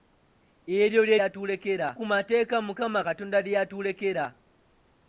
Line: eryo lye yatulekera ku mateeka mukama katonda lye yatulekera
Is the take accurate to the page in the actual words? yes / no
yes